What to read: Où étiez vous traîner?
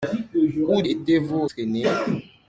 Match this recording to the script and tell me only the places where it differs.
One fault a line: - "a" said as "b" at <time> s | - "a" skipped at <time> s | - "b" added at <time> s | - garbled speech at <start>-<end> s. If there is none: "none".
none